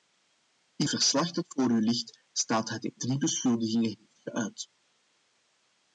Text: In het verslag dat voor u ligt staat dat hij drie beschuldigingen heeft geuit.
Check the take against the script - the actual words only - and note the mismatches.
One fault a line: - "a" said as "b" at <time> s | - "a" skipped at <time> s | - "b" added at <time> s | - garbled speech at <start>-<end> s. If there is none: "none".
- "het" skipped at 0.9 s